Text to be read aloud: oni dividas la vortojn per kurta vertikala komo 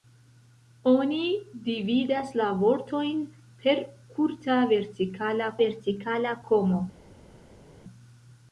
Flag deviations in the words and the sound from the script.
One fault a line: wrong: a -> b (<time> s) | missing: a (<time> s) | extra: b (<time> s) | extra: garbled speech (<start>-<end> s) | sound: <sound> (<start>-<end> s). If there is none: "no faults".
extra: vertikala (5.6 s)